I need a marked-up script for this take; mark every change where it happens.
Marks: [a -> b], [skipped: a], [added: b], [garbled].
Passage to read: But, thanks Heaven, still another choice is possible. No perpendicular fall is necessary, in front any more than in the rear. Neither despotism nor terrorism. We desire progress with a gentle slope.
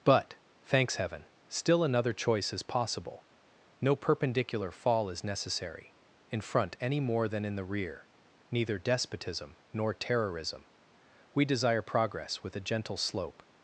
But, thanks Heaven, still another choice is possible. No perpendicular fall is necessary, in front any more than in the rear. Neither despotism nor terrorism. We desire progress with a gentle slope.